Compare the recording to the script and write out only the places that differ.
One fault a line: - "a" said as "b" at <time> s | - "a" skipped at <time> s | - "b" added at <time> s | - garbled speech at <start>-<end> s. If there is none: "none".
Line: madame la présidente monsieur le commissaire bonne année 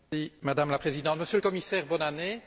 none